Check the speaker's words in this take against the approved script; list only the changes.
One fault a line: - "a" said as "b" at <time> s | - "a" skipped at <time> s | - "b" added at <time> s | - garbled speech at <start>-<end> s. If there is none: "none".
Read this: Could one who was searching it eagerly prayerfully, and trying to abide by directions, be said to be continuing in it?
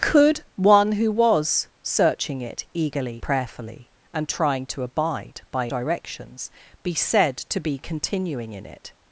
none